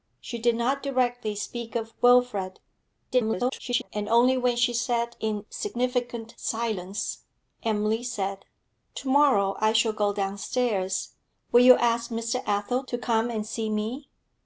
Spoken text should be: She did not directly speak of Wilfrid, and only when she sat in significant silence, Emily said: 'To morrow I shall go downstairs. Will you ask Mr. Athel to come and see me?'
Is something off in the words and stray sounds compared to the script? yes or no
yes